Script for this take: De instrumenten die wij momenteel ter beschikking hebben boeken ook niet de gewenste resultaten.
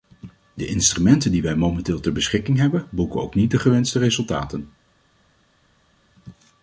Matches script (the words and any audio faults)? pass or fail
pass